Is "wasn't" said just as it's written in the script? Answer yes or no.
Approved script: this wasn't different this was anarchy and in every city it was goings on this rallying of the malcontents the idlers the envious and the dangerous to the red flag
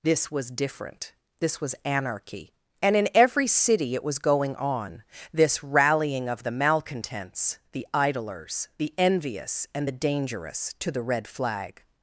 no